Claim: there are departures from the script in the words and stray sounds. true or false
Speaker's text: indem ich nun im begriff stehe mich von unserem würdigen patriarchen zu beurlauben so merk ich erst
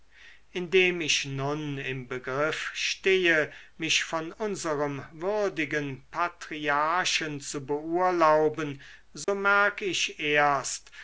true